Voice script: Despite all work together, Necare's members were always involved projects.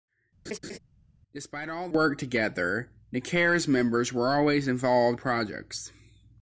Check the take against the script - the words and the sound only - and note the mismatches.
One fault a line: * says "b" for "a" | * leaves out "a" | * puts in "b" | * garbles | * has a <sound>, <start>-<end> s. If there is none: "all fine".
* has a laugh, 0.5-0.8 s